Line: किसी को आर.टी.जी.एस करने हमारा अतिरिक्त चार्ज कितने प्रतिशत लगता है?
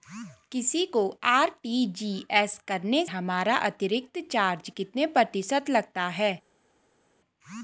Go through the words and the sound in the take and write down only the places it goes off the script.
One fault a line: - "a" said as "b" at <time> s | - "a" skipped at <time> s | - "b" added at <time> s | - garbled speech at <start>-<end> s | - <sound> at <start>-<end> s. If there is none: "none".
none